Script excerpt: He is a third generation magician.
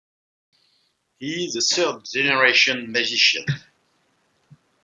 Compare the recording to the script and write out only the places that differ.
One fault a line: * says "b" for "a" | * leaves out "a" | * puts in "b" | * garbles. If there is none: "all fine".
all fine